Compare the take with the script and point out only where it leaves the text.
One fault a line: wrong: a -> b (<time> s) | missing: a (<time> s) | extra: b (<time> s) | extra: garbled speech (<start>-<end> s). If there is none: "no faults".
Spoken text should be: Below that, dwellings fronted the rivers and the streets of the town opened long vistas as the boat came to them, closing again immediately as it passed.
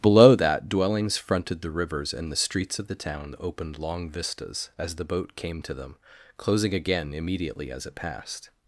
no faults